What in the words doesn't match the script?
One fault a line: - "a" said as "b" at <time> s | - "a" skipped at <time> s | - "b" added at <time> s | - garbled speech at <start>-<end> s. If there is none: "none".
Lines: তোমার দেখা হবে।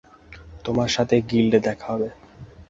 - "সাথে গিল্ডে" added at 0.9 s